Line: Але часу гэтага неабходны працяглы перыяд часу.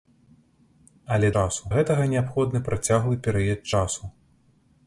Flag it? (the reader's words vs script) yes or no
no